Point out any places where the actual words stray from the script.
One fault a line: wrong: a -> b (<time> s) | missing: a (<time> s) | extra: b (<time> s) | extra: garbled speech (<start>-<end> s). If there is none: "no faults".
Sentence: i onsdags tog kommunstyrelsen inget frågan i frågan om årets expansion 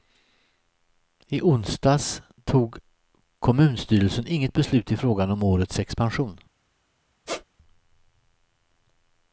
wrong: frågan -> beslut (4.5 s)